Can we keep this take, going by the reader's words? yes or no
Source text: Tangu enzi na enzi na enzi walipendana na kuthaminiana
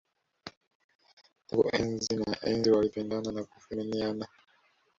no